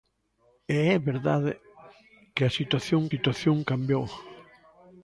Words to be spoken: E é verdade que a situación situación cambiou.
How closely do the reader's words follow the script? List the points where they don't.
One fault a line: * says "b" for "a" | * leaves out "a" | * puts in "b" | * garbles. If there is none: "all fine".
all fine